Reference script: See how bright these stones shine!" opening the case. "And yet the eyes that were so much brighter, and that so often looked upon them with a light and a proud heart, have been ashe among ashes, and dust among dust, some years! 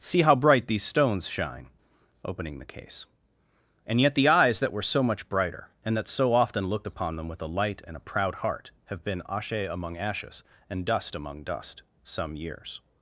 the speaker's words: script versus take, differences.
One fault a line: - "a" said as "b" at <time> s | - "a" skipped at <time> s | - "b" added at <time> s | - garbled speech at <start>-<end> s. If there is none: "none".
none